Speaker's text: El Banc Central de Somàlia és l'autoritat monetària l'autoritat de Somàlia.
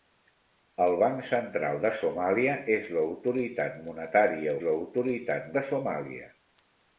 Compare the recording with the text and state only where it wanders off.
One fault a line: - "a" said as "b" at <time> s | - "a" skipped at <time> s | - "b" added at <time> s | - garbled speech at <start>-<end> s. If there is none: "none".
none